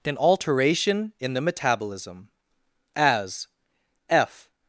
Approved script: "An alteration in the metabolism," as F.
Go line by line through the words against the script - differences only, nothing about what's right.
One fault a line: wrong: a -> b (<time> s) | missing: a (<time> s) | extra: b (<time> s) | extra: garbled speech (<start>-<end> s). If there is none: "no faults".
no faults